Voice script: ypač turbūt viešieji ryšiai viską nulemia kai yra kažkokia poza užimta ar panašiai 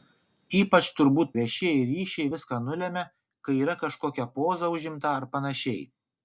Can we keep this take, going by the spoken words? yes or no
yes